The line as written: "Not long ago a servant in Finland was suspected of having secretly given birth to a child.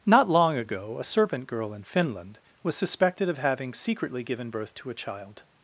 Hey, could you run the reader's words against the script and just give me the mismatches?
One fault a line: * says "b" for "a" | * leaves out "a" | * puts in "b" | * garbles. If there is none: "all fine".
* puts in "girl"